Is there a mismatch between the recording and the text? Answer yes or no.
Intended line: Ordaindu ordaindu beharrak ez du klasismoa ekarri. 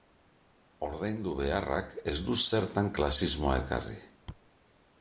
yes